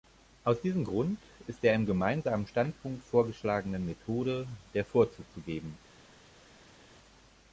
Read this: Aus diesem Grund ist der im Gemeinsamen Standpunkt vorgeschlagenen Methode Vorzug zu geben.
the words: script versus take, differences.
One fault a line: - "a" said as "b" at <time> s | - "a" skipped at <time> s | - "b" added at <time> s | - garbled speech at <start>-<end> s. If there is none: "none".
- "der" added at 4.7 s